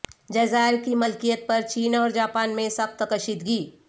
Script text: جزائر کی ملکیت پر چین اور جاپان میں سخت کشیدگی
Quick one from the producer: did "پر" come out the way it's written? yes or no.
yes